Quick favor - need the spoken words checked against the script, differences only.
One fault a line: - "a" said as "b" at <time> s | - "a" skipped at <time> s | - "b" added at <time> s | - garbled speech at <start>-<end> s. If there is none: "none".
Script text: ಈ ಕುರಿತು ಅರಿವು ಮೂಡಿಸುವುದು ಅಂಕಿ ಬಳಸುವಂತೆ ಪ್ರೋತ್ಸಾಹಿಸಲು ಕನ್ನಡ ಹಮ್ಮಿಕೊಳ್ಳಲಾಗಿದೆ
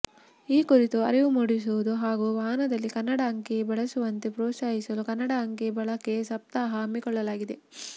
- "ಹಾಗೂ ವಾಹನದಲ್ಲಿ ಕನ್ನಡ" added at 2.0 s
- "ಅಂಕಿ ಬಳಕೆ ಸಪ್ತಾಹ" added at 5.4 s